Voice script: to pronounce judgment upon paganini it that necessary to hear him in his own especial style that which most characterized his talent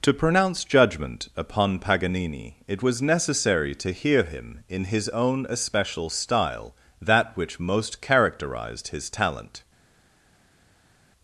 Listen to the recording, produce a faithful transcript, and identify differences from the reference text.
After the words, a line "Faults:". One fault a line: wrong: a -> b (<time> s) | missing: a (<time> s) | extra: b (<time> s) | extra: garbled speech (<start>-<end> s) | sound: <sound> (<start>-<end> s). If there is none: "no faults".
to pronounce judgment upon paganini it was necessary to hear him in his own especial style that which most characterized his talent
Faults:
wrong: that -> was (2.8 s)